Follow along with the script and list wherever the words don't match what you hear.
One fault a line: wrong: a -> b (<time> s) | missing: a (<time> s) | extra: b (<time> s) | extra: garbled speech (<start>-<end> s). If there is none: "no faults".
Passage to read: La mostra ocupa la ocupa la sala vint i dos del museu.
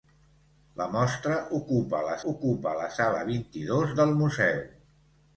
no faults